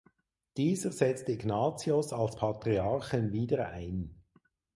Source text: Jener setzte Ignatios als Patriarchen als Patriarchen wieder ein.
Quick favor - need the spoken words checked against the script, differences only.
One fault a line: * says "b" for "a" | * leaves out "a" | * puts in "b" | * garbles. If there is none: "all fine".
* says "Dieser" for "Jener"
* leaves out "als Patriarchen"